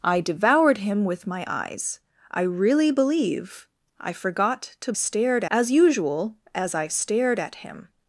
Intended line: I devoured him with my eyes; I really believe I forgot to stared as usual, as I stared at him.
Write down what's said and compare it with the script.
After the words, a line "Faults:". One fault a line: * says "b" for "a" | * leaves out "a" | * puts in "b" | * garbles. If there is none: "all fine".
I devoured him with my eyes; I really believe I forgot to stared as usual, as I stared at him.
Faults:
all fine